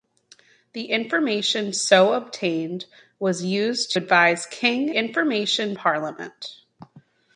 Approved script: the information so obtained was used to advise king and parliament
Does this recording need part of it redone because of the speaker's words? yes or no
yes